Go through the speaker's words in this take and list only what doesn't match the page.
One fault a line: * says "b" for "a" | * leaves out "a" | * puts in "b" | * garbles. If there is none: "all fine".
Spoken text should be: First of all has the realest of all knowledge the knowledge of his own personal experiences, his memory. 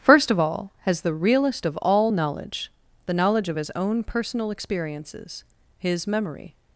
all fine